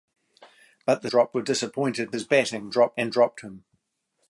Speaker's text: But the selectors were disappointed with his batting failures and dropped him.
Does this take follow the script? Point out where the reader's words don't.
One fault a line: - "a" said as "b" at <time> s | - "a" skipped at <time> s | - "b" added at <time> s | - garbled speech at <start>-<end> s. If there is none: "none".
- "selectors" said as "dropped" at 1.1 s
- "with" skipped at 2.1 s
- "failures" said as "dropped" at 2.7 s